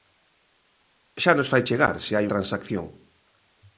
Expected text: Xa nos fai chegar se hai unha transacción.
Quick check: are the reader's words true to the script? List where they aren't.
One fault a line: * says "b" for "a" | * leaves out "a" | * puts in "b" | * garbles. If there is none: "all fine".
* leaves out "unha"